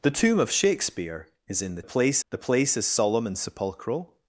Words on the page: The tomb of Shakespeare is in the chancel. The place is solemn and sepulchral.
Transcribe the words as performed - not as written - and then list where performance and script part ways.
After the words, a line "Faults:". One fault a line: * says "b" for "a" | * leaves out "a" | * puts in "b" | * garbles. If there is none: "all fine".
The tomb of Shakespeare is in the place. The place is solemn and sepulchral.
Faults:
* says "place" for "chancel"